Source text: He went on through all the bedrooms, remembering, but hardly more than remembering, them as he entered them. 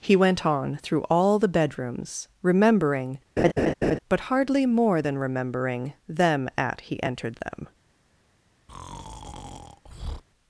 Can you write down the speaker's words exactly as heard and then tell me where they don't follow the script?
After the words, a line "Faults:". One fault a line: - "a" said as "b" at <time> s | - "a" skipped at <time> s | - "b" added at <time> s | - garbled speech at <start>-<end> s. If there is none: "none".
He went on through all the bedrooms, remembering, but hardly more than remembering, them at he entered them.
Faults:
- "as" said as "at" at 6.6 s